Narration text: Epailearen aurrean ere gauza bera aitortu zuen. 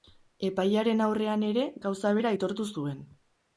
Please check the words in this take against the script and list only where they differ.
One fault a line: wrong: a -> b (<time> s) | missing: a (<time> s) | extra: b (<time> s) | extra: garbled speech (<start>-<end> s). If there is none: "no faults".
no faults